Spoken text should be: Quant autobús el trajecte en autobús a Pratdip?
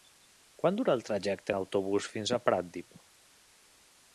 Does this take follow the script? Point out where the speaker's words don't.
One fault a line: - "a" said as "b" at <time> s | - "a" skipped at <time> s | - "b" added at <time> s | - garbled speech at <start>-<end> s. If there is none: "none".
- "autobús" said as "dura" at 0.8 s
- "fins" added at 2.1 s